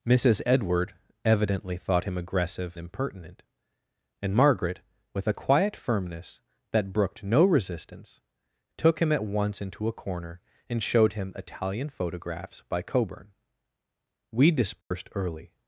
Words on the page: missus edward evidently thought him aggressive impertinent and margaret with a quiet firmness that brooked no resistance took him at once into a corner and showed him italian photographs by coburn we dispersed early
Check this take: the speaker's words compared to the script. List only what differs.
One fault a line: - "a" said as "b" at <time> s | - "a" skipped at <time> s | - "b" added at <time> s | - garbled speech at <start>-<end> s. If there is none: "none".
none